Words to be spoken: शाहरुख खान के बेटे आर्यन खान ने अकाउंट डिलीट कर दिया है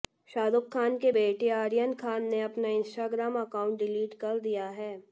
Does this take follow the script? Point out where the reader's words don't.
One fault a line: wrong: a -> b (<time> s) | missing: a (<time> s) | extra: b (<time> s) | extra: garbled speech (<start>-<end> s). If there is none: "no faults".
extra: अपना इंस्टाग्राम (2.4 s)